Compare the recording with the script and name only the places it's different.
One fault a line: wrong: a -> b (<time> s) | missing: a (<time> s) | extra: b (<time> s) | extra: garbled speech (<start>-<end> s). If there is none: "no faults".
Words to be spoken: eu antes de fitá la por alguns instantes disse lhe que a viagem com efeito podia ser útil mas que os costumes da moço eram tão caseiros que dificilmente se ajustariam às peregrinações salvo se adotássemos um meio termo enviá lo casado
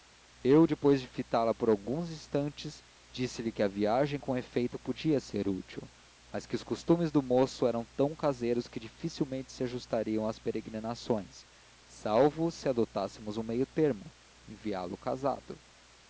wrong: antes -> depois (0.6 s)
wrong: da -> do (7.1 s)